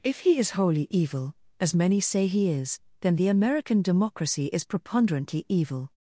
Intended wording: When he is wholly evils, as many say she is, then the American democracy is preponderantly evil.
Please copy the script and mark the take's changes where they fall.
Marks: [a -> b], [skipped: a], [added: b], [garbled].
[When -> If] he is wholly [evils, -> evil] as many say [she -> he] is, then the American democracy is preponderantly evil.